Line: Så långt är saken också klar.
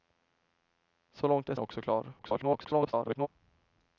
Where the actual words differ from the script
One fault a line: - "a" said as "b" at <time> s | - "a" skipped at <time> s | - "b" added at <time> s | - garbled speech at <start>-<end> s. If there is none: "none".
- "saken" skipped at 1.6 s
- garbled speech at 2.2-3.3 s